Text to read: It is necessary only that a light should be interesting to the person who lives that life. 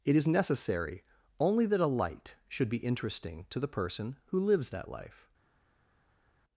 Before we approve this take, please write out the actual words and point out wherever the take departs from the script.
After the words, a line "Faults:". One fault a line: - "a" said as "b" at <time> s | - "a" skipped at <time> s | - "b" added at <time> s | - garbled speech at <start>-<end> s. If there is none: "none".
It is necessary only that a light should be interesting to the person who lives that life.
Faults:
none